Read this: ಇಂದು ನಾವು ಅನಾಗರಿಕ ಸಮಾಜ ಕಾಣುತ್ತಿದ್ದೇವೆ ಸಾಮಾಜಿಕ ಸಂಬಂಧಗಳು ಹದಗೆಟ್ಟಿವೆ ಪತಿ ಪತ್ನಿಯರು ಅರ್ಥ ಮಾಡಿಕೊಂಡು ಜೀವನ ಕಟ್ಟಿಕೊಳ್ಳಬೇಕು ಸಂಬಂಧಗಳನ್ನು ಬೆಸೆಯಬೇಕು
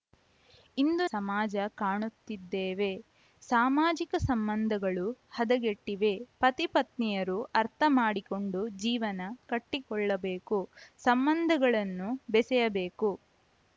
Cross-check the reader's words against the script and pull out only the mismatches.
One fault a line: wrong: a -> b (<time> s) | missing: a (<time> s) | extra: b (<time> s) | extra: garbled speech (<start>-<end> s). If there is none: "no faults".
missing: ನಾವು ಅನಾಗರಿಕ (1.1 s)